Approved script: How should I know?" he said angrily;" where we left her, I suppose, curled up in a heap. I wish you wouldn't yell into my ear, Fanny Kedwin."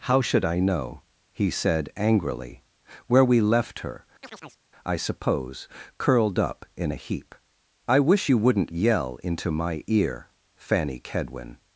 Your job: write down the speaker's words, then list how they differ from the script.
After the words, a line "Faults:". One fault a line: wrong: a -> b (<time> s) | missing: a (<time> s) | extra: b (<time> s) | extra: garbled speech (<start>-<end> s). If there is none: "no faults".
How should I know?" he said angrily;" where we left her, I suppose, curled up in a heap. I wish you wouldn't yell into my ear, Fanny Kedwin."
Faults:
no faults